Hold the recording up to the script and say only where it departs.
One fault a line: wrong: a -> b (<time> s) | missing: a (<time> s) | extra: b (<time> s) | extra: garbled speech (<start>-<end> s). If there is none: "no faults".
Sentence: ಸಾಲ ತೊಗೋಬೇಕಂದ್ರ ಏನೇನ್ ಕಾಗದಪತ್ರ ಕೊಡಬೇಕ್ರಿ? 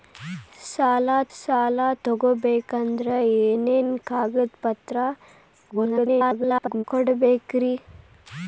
extra: ಸಾಲ (1.4 s)
extra: garbled speech (5.7-6.8 s)